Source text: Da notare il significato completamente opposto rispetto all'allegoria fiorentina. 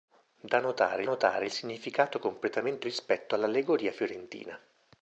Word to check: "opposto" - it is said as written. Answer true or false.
false